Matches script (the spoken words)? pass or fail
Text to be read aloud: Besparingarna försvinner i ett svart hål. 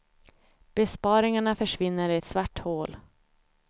pass